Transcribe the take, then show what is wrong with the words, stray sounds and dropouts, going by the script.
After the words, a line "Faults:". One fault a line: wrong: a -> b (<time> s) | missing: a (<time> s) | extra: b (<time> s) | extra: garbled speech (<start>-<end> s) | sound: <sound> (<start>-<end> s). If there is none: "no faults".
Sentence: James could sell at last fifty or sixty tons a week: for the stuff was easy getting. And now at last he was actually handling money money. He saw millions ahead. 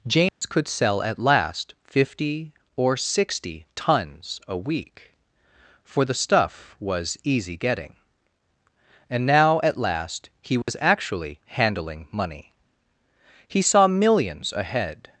James could sell at last fifty or sixty tons a week: for the stuff was easy getting. And now at last he was actually handling money. He saw millions ahead.
Faults:
sound: dropout (0.3-0.4 s)
sound: dropout (10.6-10.7 s)
missing: money (12.5 s)